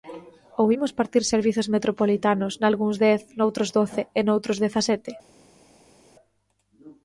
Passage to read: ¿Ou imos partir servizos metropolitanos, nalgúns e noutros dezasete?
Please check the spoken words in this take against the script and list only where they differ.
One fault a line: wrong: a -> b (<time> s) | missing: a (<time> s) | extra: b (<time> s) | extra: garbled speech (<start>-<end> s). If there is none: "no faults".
extra: dez noutros doce (3.0 s)